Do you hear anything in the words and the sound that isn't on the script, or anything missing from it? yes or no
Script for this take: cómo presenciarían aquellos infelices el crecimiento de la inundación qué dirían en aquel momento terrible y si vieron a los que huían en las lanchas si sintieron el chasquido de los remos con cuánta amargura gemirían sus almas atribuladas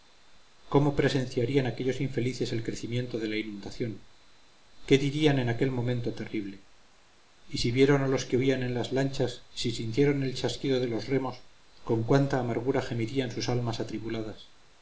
no